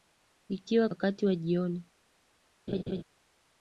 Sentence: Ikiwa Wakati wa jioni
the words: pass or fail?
pass